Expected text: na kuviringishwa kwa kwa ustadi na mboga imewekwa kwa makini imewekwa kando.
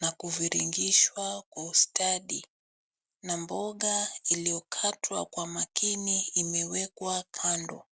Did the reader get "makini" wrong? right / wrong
right